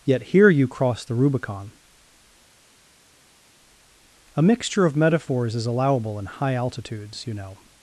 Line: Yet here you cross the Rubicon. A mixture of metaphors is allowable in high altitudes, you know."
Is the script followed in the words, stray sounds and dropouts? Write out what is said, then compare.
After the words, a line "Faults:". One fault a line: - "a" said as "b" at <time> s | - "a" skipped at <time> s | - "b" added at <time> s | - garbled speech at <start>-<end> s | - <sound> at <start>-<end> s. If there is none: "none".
Yet here you cross the Rubicon. A mixture of metaphors is allowable in high altitudes, you know."
Faults:
none